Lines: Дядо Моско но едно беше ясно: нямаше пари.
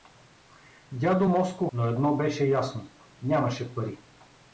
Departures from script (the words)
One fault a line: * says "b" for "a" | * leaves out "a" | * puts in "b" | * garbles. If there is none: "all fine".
all fine